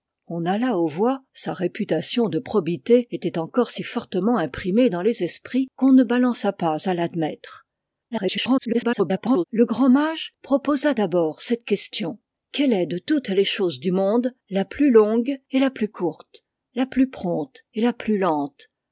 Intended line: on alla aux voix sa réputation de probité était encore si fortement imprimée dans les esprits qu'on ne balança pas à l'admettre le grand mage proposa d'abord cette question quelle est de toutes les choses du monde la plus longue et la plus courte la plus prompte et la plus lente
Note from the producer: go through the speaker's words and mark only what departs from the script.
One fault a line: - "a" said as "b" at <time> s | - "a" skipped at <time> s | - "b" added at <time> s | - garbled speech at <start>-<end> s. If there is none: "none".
- garbled speech at 8.1-9.4 s